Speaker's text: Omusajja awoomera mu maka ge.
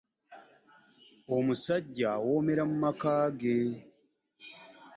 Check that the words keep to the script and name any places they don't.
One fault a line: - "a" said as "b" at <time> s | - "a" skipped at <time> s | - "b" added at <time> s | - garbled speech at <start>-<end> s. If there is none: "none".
none